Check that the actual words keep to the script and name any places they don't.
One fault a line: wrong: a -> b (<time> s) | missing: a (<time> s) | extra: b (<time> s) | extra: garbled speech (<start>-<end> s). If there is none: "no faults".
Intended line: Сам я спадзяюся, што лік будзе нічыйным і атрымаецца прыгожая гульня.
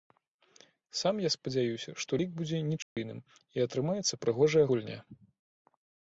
no faults